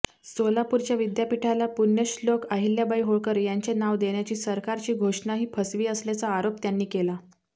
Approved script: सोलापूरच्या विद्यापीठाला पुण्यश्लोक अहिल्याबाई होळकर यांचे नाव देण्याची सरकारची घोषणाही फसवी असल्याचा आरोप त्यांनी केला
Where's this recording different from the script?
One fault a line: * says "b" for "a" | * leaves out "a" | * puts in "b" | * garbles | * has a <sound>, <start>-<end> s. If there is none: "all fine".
all fine